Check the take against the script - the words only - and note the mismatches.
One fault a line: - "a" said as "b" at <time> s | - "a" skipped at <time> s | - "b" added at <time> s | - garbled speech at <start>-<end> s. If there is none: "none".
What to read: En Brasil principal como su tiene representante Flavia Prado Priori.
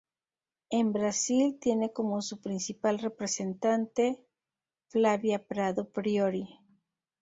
- "principal" said as "tiene" at 1.6 s
- "tiene" said as "principal" at 2.4 s